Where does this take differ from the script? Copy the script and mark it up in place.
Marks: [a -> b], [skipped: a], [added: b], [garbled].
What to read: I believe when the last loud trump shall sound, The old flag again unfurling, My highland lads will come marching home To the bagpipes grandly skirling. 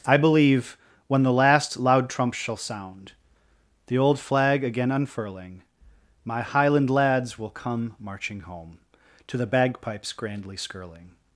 I believe when the last loud trump shall sound, The old flag again unfurling, My highland lads will come marching home To the bagpipes grandly skirling.